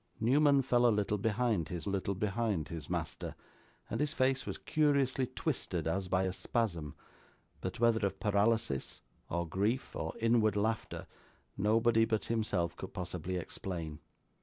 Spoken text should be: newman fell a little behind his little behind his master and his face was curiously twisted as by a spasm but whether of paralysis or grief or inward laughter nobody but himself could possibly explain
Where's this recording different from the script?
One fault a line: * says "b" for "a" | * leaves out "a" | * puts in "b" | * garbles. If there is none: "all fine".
all fine